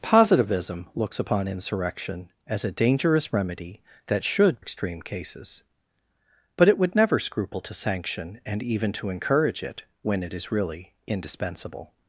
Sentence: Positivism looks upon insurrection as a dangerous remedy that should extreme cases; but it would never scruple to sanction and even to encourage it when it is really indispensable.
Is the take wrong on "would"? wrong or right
right